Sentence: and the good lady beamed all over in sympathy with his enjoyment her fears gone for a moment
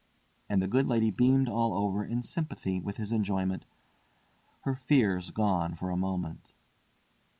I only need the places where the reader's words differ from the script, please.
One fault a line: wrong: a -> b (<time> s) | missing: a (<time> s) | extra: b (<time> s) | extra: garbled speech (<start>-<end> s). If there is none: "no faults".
no faults